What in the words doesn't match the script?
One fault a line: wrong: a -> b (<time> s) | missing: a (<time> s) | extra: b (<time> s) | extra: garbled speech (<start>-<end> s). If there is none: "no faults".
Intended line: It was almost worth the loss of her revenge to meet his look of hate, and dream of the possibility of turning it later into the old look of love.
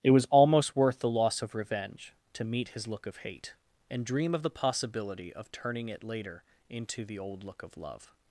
missing: her (1.5 s)